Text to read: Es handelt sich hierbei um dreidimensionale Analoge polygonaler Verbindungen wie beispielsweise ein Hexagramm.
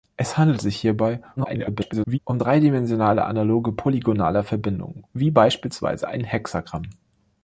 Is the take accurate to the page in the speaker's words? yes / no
no